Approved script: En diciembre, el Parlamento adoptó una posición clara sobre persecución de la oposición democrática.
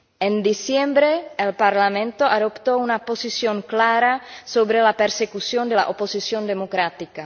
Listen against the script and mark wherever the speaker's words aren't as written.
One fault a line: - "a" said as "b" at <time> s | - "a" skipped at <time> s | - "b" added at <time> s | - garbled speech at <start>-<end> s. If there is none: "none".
- "la" added at 4.8 s